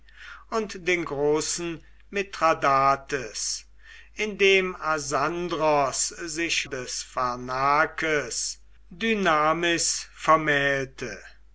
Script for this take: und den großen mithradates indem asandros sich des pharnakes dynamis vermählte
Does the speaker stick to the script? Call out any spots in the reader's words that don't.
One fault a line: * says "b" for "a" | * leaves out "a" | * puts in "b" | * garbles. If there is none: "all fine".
all fine